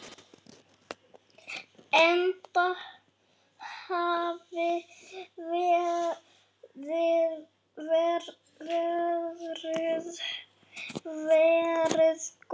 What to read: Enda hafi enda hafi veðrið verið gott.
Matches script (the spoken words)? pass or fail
fail